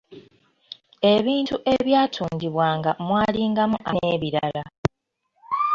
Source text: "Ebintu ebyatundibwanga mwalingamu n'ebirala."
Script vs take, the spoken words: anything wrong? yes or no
no